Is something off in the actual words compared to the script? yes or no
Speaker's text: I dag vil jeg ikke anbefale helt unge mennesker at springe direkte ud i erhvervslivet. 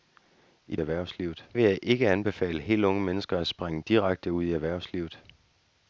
yes